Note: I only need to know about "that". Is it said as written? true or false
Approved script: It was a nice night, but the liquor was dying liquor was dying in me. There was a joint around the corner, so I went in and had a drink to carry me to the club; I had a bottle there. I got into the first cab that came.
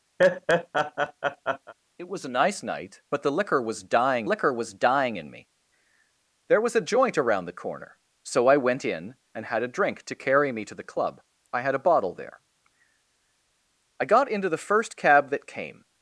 true